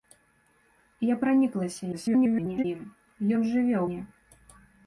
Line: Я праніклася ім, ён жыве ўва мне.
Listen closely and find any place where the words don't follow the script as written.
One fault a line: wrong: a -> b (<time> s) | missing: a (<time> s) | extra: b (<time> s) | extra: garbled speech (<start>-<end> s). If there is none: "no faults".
extra: garbled speech (1.9-2.6 s)
missing: ўва (3.8 s)